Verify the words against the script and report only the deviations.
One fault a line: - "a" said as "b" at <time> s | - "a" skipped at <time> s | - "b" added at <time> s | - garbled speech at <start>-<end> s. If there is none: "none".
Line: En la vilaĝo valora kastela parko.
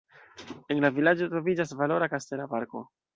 - "troviĝas" added at 1.3 s